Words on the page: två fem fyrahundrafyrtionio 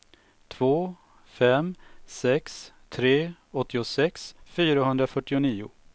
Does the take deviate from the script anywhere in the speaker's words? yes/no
yes